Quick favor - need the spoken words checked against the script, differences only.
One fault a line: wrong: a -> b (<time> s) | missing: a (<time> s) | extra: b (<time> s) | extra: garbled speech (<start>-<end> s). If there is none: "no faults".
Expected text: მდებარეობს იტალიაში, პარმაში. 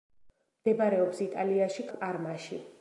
no faults